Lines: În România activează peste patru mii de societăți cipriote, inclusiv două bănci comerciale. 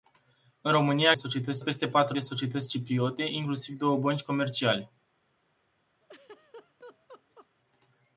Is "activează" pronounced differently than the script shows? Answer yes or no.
yes